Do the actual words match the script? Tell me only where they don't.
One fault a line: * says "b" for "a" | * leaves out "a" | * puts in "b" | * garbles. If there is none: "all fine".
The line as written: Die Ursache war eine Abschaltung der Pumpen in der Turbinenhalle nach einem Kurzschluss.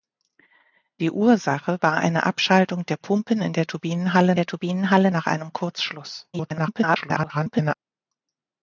* puts in "der Turbinenhalle"
* garbles